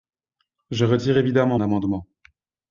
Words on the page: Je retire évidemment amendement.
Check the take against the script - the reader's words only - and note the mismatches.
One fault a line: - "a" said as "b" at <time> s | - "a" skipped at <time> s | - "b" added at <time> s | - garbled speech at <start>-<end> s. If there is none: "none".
none